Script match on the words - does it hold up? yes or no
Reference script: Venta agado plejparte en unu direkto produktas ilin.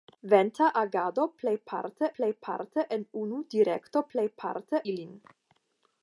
no